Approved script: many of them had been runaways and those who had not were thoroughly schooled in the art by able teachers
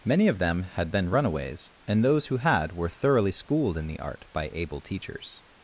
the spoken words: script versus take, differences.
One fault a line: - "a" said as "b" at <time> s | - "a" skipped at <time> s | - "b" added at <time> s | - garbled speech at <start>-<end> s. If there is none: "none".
- "not" skipped at 2.7 s